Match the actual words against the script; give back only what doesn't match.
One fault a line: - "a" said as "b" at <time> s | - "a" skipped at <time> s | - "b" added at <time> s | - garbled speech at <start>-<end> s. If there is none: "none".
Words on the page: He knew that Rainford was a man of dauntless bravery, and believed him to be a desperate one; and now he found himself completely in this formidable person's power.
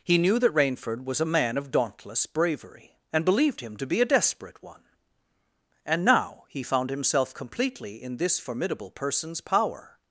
none